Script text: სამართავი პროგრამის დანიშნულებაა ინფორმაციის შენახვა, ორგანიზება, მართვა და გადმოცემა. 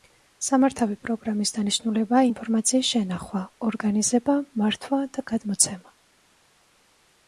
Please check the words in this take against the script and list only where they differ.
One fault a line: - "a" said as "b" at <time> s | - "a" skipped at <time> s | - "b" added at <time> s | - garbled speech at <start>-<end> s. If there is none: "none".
none